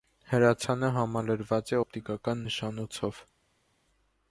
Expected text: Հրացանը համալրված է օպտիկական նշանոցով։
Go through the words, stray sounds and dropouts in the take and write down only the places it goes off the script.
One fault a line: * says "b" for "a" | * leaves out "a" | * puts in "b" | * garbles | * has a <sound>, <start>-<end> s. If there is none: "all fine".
all fine